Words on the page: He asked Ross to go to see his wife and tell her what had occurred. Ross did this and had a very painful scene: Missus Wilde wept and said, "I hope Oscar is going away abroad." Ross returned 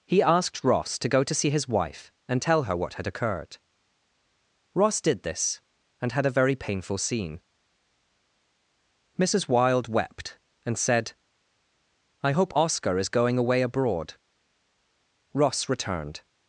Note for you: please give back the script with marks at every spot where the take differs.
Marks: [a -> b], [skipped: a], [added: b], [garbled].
He asked Ross to go to see his wife and tell her what had occurred. Ross did this and had a very painful scene: Missus Wilde wept and said, "I hope Oscar is going away abroad." Ross returned